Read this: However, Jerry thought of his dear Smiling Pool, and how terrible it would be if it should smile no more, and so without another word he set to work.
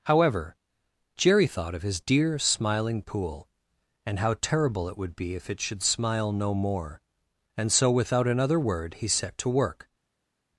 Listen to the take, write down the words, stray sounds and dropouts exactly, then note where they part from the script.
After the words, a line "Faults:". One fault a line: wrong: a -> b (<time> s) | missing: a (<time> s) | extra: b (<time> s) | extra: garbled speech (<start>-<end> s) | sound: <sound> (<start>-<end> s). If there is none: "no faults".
However, Jerry thought of his dear Smiling Pool, and how terrible it would be if it should smile no more, and so without another word he set to work.
Faults:
no faults